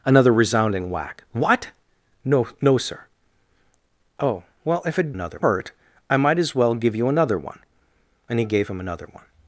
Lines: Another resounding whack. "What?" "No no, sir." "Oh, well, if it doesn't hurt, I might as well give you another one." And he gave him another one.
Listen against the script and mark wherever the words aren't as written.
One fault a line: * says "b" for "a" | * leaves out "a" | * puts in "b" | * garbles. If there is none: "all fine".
* says "another" for "doesn't"